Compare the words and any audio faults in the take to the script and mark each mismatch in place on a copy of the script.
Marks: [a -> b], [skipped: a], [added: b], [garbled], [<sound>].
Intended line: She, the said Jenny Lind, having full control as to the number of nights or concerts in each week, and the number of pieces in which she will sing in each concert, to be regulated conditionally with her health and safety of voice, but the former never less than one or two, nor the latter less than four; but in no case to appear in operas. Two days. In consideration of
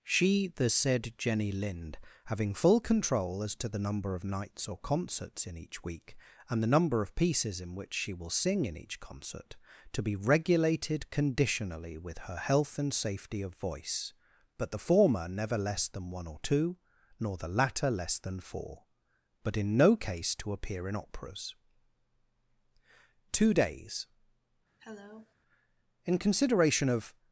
She, the said Jenny Lind, having full control as to the number of nights or concerts in each week, and the number of pieces in which she will sing in each concert, to be regulated conditionally with her health and safety of voice, but the former never less than one or two, nor the latter less than four; but in no case to appear in operas. Two days. [cough] In consideration of